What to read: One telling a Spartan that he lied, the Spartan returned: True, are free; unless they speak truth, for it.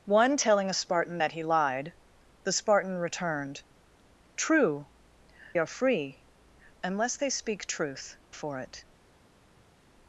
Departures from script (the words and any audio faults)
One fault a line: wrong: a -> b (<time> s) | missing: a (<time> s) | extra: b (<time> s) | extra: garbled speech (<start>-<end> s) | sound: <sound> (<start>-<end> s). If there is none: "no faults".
no faults